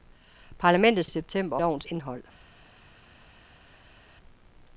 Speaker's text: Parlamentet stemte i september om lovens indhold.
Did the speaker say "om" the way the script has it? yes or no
no